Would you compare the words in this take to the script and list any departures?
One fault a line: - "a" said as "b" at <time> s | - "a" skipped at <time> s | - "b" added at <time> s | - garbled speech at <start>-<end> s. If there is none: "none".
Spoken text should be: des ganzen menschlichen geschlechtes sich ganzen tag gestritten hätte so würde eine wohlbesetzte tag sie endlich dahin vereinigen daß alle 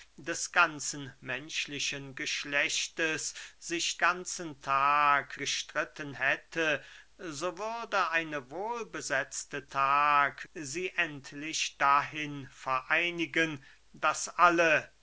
none